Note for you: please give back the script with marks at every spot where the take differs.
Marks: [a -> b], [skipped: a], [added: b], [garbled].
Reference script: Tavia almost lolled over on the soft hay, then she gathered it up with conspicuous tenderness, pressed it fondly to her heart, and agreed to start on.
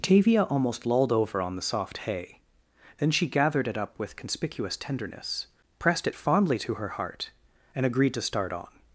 Tavia almost lolled over on the soft hay, then she gathered it up with conspicuous tenderness, pressed it fondly to her heart, and agreed to start on.